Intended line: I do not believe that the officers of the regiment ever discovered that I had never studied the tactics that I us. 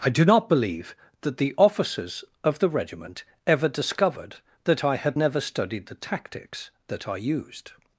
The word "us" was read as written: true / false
false